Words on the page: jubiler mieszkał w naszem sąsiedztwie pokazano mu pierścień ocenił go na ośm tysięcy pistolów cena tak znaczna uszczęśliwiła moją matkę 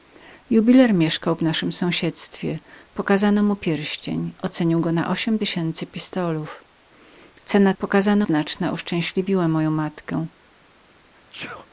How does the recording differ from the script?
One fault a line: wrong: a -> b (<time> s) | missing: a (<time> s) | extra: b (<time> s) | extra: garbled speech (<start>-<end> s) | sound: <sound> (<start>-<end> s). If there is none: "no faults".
wrong: tak -> pokazano (7.8 s)
sound: sneeze (11.1-11.7 s)